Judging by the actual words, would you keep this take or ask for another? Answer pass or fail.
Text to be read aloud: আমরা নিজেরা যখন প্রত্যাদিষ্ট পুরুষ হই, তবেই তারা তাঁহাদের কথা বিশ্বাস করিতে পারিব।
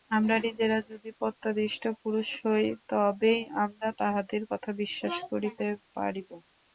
fail